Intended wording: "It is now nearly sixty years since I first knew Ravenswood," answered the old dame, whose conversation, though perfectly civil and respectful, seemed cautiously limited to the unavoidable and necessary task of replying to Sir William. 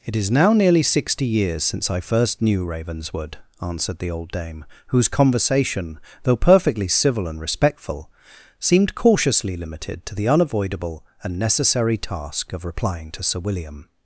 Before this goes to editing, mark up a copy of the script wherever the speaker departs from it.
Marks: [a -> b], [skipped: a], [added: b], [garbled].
"It is now nearly sixty years since I first knew Ravenswood," answered the old dame, whose conversation, though perfectly civil and respectful, seemed cautiously limited to the unavoidable and necessary task of replying to Sir William.